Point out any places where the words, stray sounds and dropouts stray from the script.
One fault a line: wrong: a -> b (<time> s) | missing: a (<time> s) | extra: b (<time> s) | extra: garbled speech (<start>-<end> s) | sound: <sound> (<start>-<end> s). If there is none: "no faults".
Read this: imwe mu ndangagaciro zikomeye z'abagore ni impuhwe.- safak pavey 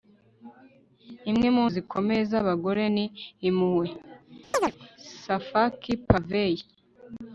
missing: ndangagaciro (1.6 s)
sound: chirp (4.5-4.7 s)